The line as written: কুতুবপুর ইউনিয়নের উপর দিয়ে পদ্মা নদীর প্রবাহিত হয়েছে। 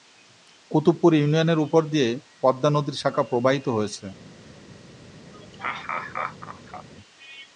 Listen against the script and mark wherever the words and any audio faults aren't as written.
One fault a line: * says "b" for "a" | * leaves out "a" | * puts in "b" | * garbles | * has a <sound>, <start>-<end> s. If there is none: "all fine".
* puts in "শাখা"
* has a laugh, 5.3-6.9 s